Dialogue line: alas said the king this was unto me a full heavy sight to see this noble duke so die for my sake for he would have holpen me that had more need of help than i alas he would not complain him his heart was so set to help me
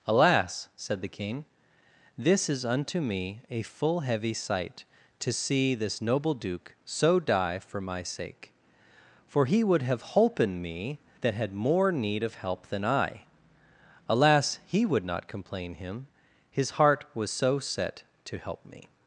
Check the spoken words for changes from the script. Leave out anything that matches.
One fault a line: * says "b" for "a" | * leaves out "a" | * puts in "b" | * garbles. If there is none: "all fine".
* says "is" for "was"